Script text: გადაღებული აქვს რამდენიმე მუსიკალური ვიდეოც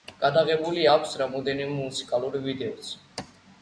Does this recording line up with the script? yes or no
yes